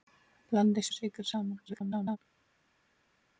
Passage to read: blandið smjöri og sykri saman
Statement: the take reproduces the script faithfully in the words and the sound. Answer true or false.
false